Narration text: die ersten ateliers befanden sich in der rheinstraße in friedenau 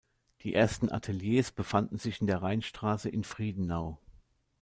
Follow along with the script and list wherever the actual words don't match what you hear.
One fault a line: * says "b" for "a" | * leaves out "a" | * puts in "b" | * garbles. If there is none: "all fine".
all fine